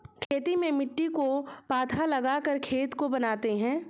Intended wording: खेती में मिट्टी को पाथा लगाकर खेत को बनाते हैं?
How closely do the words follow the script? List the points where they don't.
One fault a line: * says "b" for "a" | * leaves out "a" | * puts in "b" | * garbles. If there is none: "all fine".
all fine